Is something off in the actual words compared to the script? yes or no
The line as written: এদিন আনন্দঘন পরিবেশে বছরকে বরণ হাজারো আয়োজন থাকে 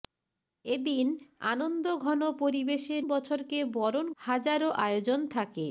no